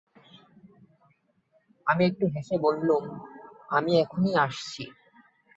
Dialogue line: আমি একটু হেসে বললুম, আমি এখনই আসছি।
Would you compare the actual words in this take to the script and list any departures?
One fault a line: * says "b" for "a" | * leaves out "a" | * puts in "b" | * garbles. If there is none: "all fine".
all fine